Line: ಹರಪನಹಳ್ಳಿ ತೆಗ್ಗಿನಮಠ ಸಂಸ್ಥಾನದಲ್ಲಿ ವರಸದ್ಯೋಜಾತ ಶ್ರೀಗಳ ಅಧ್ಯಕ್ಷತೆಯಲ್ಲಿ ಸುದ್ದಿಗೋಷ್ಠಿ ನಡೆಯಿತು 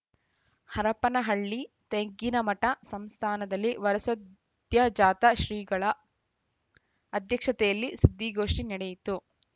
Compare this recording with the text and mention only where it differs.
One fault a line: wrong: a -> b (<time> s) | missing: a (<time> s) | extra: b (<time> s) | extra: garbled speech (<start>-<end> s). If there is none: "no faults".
no faults